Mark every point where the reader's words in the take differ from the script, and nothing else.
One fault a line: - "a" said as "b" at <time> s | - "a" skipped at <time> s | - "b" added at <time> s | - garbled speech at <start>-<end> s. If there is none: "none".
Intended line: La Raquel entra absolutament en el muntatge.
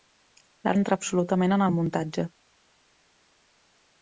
- "Raquel" skipped at 0.7 s